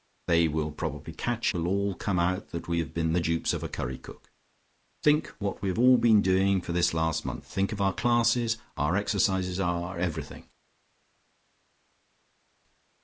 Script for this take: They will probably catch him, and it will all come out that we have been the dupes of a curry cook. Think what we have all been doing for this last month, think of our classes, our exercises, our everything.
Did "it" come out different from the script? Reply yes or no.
yes